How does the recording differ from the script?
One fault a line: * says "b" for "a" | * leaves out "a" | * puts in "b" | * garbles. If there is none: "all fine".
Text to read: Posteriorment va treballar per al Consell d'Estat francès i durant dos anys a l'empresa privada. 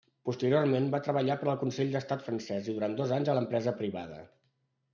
all fine